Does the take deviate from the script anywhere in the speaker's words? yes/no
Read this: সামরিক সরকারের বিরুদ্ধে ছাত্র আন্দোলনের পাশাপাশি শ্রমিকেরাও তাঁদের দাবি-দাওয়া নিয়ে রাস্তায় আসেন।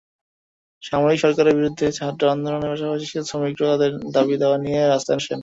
no